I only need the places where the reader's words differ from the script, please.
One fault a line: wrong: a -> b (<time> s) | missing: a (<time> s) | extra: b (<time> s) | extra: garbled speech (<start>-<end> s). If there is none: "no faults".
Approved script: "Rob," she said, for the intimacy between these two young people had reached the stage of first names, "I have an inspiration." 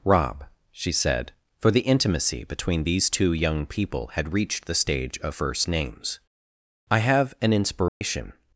no faults